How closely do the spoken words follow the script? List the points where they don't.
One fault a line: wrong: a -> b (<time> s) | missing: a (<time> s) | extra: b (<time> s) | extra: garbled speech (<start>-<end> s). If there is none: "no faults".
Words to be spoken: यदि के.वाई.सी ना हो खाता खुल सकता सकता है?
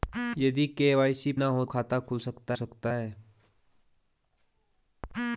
no faults